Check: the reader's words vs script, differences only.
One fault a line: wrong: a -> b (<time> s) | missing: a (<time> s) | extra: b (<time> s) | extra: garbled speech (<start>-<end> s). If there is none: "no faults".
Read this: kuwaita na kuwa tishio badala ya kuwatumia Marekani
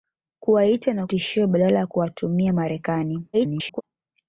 missing: kuwa (1.1 s)
extra: garbled speech (3.3-3.8 s)